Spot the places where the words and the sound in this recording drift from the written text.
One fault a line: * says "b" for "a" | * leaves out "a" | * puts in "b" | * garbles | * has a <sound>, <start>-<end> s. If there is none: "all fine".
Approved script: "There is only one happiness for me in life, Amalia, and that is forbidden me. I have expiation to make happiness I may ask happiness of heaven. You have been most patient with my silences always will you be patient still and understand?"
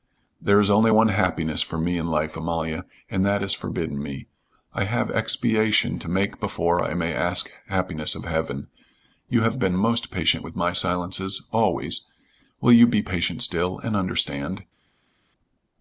* says "before" for "happiness"